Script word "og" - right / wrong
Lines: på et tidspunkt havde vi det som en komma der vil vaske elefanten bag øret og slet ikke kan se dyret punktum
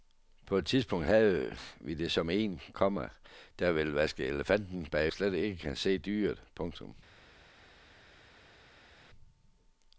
wrong